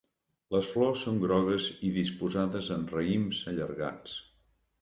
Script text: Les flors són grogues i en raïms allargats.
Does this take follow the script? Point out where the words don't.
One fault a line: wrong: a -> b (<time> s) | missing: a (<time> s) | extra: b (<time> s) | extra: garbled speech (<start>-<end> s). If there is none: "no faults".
extra: disposades (2.0 s)